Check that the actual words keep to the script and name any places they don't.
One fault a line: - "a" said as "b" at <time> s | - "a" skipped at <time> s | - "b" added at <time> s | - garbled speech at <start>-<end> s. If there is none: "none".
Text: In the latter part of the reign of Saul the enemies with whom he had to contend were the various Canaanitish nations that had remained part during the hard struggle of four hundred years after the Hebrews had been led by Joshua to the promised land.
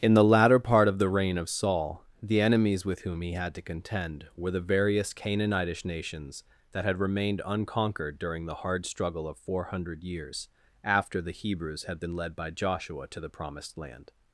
- "part" said as "unconquered" at 7.5 s